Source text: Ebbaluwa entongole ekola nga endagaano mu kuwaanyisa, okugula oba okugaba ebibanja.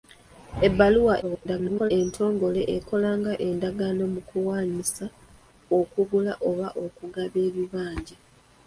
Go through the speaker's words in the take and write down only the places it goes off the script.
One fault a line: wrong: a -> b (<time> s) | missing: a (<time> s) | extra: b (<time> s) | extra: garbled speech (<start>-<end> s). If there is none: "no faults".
extra: garbled speech (1.2-1.9 s)